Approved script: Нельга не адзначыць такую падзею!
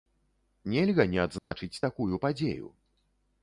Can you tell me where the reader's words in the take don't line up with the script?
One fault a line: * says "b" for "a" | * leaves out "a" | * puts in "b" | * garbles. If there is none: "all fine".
all fine